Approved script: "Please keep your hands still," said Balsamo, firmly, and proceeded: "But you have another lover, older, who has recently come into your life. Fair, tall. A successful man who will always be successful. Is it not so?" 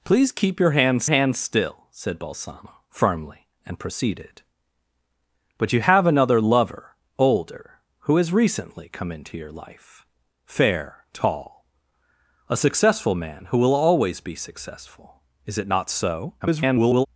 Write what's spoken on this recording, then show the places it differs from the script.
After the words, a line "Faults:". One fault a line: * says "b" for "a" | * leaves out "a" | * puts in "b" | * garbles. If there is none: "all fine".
"Please keep your hands hands still," said Balsamo, firmly, and proceeded: "But you have another lover, older, who has recently come into your life. Fair, tall. A successful man who will always be successful. Is it not so?" [garbled]
Faults:
* puts in "hands"
* garbles